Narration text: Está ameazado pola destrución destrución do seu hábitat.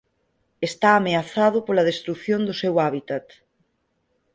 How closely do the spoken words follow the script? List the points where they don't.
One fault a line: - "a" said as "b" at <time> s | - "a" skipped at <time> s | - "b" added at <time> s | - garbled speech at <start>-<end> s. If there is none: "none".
- "destrución" skipped at 2.4 s